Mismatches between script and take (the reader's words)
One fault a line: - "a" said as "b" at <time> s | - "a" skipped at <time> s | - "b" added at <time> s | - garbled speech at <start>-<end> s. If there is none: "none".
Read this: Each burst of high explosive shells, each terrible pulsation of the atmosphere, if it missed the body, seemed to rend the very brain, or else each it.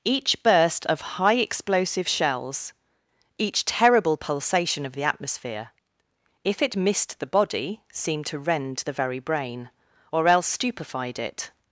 - "each" said as "stupefied" at 10.5 s